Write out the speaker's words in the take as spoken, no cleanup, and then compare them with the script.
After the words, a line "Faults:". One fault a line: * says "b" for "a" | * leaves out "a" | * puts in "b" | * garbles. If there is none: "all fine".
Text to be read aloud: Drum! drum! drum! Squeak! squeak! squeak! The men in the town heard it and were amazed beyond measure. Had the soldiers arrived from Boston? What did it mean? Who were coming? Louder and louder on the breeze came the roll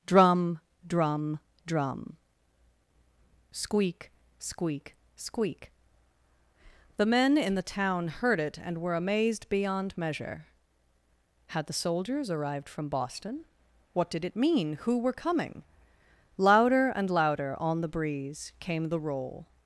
Drum! drum! drum! Squeak! squeak! squeak! The men in the town heard it and were amazed beyond measure. Had the soldiers arrived from Boston? What did it mean? Who were coming? Louder and louder on the breeze came the roll
Faults:
all fine